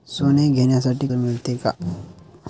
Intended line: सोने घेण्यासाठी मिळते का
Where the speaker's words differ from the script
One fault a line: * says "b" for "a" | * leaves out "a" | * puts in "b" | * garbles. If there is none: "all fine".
all fine